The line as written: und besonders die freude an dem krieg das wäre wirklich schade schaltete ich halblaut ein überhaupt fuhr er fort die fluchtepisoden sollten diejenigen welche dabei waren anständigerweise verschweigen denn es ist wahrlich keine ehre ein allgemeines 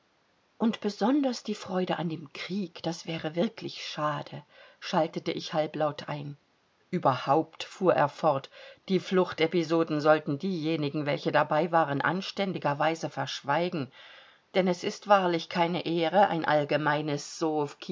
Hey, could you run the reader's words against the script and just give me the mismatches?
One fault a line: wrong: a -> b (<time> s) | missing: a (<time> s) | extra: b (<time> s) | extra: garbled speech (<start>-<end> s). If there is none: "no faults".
no faults